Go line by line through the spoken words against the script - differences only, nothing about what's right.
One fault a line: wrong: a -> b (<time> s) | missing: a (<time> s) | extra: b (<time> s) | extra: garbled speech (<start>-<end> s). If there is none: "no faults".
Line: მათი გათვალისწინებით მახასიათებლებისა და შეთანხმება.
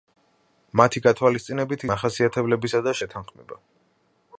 no faults